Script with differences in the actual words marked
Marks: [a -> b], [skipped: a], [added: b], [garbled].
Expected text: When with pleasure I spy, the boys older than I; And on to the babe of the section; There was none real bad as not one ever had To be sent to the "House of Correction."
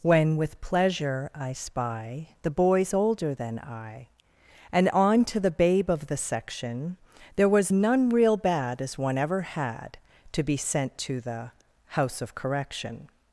When with pleasure I spy, the boys older than I; And on to the babe of the section; There was none real bad as [skipped: not] one ever had To be sent to the "House of Correction."